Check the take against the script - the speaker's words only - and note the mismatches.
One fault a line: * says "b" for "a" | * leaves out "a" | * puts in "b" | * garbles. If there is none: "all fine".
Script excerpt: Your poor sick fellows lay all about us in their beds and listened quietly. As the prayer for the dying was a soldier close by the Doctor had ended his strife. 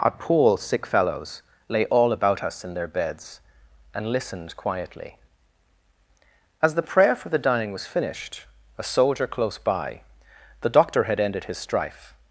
* says "Our" for "Your"
* puts in "finished"